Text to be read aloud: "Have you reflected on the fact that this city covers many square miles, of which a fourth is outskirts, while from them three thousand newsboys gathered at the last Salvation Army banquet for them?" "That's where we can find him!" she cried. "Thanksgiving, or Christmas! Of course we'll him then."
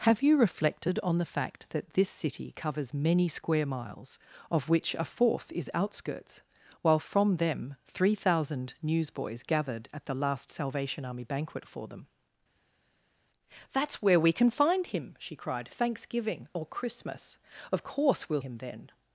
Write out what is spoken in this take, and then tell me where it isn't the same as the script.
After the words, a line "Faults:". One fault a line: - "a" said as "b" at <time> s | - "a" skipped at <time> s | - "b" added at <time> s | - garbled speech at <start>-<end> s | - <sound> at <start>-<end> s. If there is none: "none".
"Have you reflected on the fact that this city covers many square miles, of which a fourth is outskirts, while from them three thousand newsboys gathered at the last Salvation Army banquet for them?" "That's where we can find him!" she cried. "Thanksgiving, or Christmas! Of course we'll him then."
Faults:
none